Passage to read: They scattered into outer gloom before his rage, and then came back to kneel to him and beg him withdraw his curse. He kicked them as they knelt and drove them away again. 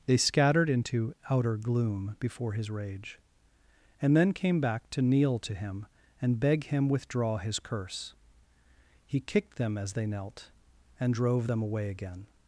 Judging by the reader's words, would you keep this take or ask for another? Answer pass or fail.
pass